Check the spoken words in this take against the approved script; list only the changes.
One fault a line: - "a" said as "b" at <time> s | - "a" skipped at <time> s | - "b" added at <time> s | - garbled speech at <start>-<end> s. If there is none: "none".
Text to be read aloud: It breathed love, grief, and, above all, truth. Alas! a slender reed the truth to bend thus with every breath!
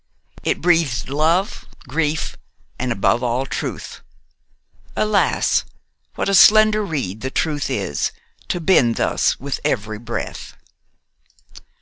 - "what" added at 6.2 s
- "is" added at 7.7 s